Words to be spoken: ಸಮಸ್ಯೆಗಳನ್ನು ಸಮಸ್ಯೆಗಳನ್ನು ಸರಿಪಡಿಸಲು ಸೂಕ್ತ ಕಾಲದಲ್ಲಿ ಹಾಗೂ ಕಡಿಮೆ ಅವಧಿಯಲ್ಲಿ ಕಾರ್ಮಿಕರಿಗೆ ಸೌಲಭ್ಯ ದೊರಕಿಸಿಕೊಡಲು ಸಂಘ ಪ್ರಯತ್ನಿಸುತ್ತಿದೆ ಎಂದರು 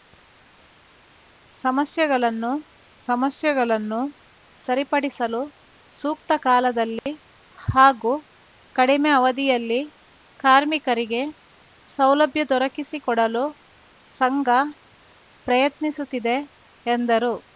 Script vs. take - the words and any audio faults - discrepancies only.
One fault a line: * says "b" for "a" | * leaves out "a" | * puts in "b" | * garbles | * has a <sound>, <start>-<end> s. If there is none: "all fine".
* has a dropout, 7.0-7.1 s